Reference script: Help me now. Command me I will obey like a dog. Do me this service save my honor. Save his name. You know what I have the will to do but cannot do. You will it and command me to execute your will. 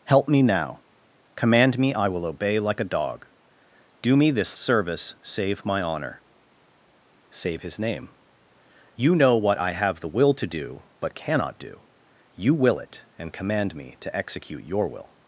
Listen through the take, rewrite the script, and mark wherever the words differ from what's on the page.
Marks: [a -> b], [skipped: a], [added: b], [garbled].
Help me now. Command me I will obey like a dog. Do me this service save my honor. Save his name. You know what I have the will to do but cannot do. You will it and command me to execute your will.